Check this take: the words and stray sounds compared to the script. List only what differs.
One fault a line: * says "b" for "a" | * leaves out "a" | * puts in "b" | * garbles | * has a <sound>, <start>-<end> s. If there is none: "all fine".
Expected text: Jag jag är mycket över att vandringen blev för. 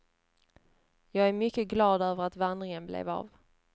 * leaves out "jag"
* puts in "glad"
* says "av" for "för"